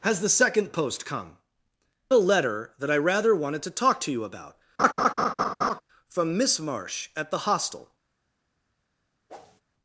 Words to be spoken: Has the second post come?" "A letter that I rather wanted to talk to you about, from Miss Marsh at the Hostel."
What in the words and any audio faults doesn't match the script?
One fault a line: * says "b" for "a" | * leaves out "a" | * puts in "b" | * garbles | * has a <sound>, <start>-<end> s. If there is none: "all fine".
* has a laugh, 4.8-5.8 s
* has a whoosh, 9.3-9.6 s